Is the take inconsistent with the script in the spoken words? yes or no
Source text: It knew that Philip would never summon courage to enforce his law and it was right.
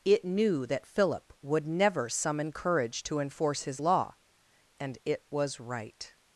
no